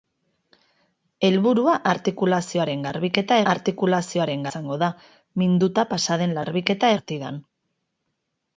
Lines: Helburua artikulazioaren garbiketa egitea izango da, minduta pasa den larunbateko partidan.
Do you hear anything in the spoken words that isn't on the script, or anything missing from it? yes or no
yes